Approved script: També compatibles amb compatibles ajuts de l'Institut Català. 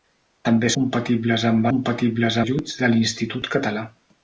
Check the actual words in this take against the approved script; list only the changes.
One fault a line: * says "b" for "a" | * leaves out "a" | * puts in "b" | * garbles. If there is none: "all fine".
all fine